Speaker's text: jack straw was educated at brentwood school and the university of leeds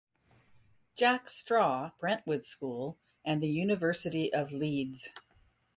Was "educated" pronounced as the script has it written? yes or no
no